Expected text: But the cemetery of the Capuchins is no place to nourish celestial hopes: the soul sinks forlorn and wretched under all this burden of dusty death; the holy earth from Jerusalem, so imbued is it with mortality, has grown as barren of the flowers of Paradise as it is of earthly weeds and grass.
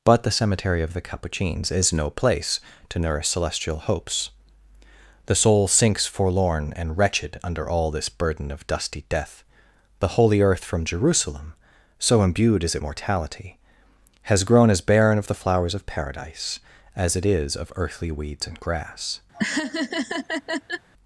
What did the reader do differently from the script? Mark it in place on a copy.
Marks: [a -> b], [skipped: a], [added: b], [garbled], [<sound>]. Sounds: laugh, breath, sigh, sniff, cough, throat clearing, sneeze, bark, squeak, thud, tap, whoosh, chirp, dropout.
But the cemetery of the Capuchins is no place to nourish celestial hopes: the soul sinks forlorn and wretched under all this burden of dusty death; the holy earth from Jerusalem, so imbued is it [skipped: with] mortality, has grown as barren of the flowers of Paradise as it is of earthly weeds and grass. [laugh]